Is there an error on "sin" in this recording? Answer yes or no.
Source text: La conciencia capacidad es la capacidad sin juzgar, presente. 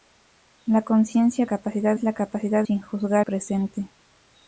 no